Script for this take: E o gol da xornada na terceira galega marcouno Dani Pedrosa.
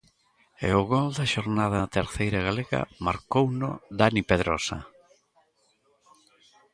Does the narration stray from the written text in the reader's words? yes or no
no